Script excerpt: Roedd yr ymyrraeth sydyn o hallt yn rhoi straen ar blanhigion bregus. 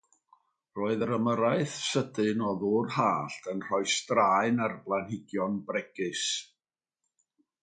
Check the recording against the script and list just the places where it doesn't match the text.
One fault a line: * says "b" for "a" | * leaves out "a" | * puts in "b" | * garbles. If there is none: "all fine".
* puts in "ddŵr"